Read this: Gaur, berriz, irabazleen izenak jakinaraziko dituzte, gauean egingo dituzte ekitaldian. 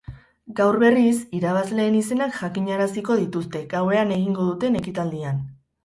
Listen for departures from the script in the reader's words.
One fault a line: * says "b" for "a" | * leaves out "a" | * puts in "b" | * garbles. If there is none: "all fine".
* says "duten" for "dituzte"